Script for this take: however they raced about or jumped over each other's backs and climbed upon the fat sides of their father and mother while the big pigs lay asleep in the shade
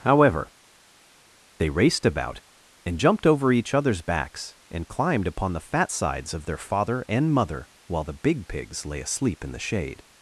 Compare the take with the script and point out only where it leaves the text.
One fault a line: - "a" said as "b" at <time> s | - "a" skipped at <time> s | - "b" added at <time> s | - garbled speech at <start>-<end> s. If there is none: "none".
- "or" said as "and" at 2.9 s